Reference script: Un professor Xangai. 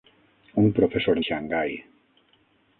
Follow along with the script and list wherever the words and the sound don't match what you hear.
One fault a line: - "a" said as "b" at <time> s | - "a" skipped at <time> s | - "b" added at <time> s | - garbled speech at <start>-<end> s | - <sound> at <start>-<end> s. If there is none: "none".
none